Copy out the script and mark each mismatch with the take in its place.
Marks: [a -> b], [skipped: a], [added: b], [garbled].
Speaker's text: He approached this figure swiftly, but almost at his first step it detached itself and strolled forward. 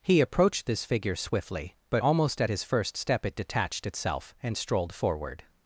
He approached this figure swiftly, but almost at his first step it detached itself and strolled forward.